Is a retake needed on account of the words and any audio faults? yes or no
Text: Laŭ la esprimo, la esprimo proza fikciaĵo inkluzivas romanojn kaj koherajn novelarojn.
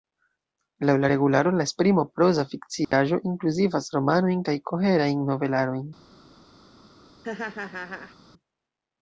yes